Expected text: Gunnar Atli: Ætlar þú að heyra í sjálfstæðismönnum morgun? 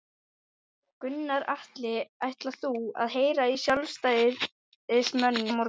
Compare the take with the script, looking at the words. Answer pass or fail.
pass